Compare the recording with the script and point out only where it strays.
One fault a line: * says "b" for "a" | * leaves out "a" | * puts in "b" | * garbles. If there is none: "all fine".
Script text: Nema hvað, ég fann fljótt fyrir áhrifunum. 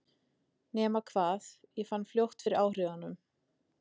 all fine